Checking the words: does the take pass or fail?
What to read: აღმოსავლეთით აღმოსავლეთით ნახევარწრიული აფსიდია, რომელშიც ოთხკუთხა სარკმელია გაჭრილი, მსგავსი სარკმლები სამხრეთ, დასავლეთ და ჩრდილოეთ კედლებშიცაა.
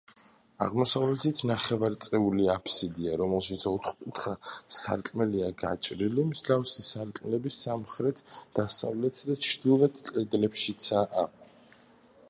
fail